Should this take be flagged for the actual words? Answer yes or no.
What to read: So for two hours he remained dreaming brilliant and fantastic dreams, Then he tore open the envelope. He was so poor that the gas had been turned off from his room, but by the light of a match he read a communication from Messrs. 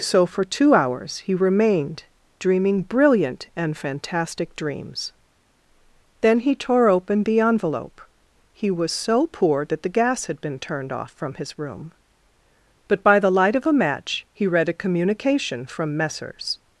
no